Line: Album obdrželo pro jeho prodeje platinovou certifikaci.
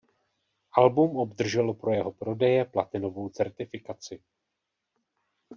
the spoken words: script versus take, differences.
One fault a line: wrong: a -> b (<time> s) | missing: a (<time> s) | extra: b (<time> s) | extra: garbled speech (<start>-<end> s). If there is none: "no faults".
no faults